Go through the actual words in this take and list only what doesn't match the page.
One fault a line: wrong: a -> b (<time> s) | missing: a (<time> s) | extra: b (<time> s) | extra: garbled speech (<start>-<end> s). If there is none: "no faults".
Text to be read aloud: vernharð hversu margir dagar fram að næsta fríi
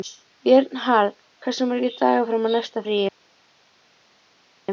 no faults